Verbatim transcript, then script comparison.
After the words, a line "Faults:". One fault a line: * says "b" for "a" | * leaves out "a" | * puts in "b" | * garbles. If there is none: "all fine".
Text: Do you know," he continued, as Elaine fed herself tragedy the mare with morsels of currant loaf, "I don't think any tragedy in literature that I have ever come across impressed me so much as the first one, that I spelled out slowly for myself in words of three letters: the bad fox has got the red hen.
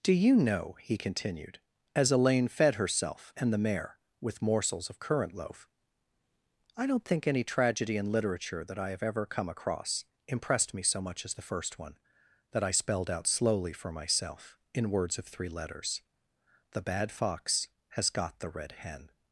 Do you know," he continued, as Elaine fed herself and the mare with morsels of currant loaf, "I don't think any tragedy in literature that I have ever come across impressed me so much as the first one, that I spelled out slowly for myself in words of three letters: the bad fox has got the red hen.
Faults:
* says "and" for "tragedy"